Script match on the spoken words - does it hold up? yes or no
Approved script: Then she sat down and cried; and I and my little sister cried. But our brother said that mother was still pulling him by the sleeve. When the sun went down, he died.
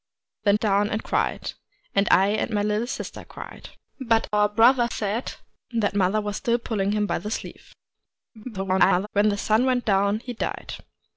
no